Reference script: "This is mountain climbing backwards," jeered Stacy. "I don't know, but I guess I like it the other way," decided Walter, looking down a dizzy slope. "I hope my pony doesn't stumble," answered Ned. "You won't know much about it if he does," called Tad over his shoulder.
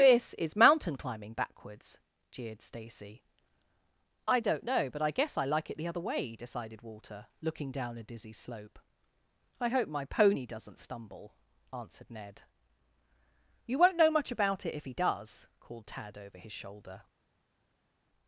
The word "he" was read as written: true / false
true